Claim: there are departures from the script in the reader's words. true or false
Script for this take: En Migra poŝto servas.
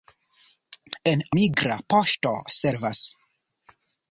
false